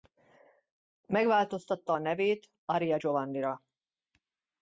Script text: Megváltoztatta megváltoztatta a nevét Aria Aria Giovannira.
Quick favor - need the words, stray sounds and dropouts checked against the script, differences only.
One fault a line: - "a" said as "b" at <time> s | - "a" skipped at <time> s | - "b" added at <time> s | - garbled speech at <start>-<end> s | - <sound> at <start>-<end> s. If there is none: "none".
- "megváltoztatta" skipped at 1.9 s
- "Aria" skipped at 3.0 s